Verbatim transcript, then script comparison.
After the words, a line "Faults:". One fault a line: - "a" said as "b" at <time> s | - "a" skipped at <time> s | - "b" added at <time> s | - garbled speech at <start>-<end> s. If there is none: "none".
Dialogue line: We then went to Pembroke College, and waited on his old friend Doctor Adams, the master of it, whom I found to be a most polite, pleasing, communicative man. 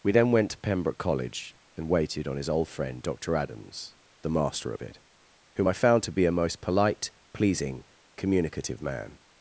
We then went to Pembroke College, and waited on his old friend Doctor Adams, the master of it, whom I found to be a most polite, pleasing, communicative man.
Faults:
none